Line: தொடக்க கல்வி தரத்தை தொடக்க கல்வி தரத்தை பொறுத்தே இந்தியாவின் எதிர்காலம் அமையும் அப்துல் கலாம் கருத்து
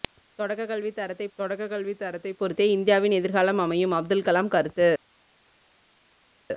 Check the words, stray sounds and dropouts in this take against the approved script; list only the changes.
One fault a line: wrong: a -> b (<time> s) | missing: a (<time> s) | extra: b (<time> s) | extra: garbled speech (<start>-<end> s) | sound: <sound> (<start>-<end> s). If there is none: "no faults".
no faults